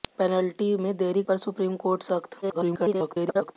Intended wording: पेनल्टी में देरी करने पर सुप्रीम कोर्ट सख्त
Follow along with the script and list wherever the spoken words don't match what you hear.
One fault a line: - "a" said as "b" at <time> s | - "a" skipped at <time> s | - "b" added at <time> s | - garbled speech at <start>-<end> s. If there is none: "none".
- "करने" skipped at 1.2 s
- garbled speech at 2.4-3.6 s